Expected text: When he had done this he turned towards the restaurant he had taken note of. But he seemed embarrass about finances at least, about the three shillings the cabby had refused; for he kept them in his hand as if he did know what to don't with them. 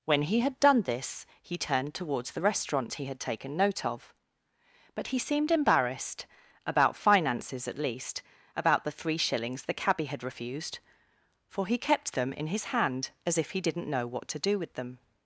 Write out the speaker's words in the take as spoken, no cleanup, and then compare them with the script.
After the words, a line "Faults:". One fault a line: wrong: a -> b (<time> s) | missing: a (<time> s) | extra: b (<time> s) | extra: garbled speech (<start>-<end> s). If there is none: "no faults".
When he had done this he turned towards the restaurant he had taken note of. But he seemed embarrassed about finances at least, about the three shillings the cabby had refused; for he kept them in his hand as if he didn't know what to do with them.
Faults:
wrong: embarrass -> embarrassed (5.5 s)
wrong: did -> didn't (13.6 s)
wrong: don't -> do (14.4 s)